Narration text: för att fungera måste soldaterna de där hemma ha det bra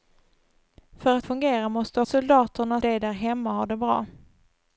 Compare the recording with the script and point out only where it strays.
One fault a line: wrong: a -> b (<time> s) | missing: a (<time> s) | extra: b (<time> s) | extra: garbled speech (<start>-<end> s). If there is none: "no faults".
no faults